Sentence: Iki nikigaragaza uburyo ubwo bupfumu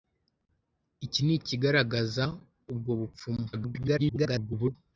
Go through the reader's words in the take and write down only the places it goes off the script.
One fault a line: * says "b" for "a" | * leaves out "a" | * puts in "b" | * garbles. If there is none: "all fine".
* leaves out "uburyo"
* garbles